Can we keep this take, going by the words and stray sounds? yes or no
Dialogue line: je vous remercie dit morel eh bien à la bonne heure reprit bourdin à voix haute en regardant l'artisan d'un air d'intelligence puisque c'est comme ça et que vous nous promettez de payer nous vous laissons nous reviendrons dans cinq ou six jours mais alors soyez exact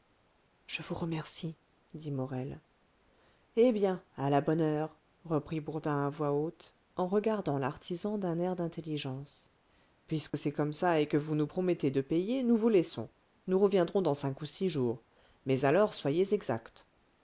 no